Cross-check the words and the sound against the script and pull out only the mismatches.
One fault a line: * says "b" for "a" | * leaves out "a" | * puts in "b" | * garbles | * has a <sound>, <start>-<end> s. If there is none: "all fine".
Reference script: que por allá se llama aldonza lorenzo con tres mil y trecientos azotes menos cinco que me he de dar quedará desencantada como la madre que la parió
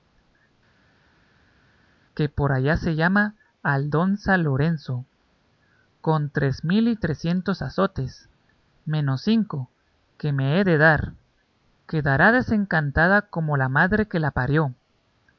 all fine